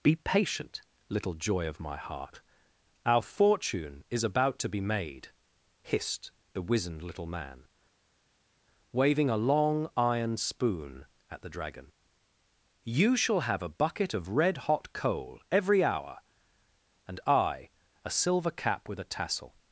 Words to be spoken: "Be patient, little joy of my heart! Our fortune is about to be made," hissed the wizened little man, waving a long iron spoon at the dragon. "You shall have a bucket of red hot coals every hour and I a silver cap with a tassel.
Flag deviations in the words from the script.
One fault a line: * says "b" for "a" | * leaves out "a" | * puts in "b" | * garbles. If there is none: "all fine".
* says "coal" for "coals"